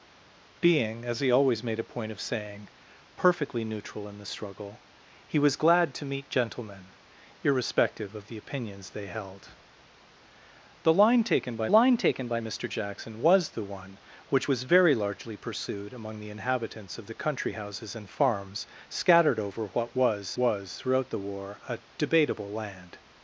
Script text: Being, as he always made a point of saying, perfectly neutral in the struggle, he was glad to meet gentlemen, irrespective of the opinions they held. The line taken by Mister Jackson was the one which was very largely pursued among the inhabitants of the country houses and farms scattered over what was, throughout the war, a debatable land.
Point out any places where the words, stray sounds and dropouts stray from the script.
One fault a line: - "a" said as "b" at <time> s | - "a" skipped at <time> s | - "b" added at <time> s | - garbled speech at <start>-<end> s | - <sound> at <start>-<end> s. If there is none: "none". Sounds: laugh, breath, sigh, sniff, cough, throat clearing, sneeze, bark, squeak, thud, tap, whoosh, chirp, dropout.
- "line taken by" added at 11.7 s
- "was" added at 20.4 s